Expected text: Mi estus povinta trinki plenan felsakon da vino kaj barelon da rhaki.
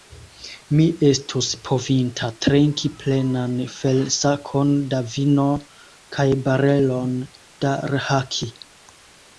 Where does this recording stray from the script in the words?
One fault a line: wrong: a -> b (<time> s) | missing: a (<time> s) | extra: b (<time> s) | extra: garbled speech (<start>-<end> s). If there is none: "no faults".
no faults